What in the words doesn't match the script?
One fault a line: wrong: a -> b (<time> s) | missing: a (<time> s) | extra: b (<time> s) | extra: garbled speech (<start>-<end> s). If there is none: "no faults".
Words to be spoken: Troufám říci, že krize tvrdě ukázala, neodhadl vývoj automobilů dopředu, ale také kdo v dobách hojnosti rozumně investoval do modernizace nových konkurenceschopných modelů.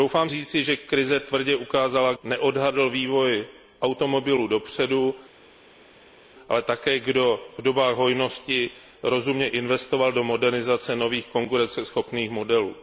no faults